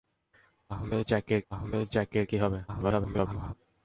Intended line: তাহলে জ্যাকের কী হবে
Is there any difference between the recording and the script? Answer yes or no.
yes